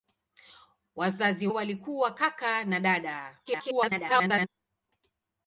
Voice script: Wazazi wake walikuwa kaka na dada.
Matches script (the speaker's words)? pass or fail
fail